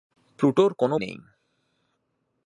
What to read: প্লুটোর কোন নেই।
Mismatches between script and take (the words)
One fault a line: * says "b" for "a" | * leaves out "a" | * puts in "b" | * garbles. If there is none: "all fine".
all fine